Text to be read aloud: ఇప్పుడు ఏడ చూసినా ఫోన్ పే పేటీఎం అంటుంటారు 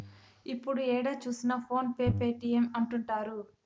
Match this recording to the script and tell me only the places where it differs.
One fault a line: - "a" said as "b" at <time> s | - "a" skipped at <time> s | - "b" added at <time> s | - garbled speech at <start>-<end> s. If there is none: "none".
none